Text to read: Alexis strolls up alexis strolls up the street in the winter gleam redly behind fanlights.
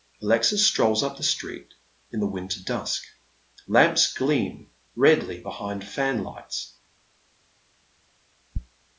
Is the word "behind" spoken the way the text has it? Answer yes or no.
yes